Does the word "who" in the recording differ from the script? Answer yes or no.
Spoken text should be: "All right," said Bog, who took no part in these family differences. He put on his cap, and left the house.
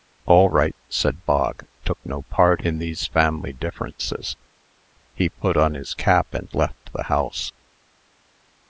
yes